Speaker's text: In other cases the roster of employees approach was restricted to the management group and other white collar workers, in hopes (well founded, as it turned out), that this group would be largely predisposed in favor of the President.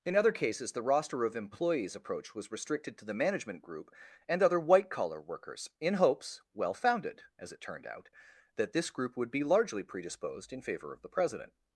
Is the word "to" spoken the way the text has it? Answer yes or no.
yes